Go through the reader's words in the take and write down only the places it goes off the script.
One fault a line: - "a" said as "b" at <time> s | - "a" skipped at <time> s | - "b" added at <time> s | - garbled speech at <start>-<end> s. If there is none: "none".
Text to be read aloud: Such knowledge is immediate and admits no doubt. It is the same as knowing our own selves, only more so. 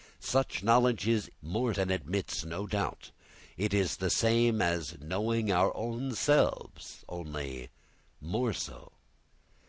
- "immediate" said as "more" at 1.4 s